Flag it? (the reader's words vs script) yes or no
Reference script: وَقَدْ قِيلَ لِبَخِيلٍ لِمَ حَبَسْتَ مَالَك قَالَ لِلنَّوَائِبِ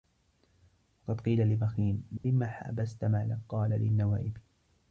no